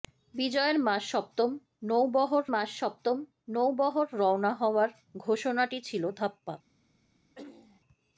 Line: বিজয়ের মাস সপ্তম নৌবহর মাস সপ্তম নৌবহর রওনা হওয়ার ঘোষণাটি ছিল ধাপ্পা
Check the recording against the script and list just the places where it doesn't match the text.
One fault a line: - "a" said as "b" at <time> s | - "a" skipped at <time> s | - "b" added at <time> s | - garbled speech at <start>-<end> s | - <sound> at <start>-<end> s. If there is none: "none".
- throat clearing at 7.4-7.8 s